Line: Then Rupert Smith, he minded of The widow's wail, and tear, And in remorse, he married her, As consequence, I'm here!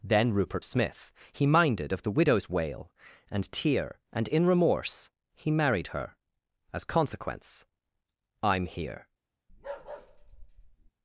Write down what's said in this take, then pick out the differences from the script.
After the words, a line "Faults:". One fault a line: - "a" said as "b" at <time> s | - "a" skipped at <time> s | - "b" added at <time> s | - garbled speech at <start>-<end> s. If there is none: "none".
Then Rupert Smith, he minded of The widow's wail, and tear, And in remorse, he married her, As consequence, I'm here!
Faults:
none